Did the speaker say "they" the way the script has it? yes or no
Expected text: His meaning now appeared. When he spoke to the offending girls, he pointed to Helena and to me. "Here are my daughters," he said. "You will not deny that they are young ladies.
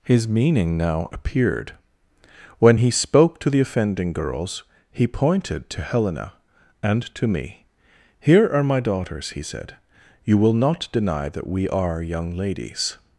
no